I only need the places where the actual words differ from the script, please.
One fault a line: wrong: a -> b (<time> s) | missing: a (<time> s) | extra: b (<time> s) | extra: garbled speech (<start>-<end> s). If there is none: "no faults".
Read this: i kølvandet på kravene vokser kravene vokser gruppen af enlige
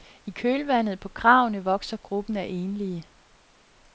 missing: kravene vokser (2.0 s)